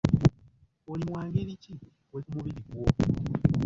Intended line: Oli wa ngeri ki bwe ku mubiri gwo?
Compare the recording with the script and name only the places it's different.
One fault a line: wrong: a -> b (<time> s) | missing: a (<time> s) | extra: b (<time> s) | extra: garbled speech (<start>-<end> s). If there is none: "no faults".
no faults